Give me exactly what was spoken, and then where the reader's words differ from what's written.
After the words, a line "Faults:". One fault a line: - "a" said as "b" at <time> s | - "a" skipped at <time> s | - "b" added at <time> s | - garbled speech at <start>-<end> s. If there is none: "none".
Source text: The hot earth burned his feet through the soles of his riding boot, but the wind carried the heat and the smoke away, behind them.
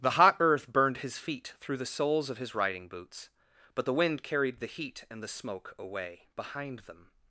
The hot earth burned his feet through the soles of his riding boots, but the wind carried the heat and the smoke away, behind them.
Faults:
- "boot" said as "boots" at 2.9 s